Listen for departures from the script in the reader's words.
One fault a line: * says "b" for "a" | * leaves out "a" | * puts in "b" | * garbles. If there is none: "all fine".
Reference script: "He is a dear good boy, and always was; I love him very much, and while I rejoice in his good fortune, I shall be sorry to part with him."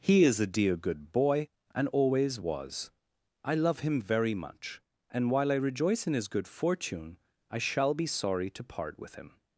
all fine